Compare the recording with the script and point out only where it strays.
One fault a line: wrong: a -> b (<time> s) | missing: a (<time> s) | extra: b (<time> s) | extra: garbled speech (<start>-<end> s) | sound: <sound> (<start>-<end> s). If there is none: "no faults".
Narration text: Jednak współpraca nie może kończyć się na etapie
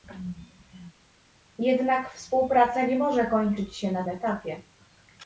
no faults